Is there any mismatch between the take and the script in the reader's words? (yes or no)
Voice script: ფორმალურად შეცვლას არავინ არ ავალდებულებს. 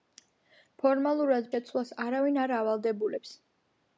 no